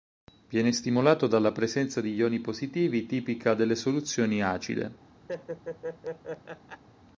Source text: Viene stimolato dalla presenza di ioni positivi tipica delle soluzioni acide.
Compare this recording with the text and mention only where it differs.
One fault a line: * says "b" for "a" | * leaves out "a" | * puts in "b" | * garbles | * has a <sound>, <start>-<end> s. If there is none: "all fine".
* has a laugh, 5.3-6.8 s